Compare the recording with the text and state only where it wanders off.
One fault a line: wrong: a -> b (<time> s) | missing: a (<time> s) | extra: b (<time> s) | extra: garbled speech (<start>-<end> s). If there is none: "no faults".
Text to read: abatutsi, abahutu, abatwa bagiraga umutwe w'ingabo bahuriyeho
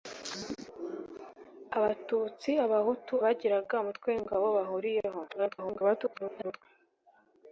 missing: abatwa (3.1 s)
extra: garbled speech (5.3-6.6 s)